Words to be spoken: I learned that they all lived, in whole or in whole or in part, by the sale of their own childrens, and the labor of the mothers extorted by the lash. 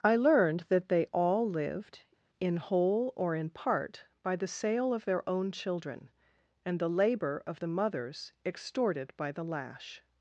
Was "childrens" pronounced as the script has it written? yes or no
no